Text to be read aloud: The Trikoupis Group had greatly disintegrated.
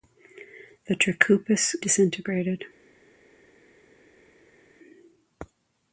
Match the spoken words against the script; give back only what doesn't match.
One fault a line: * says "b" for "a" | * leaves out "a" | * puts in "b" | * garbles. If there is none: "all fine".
* leaves out "Group had greatly"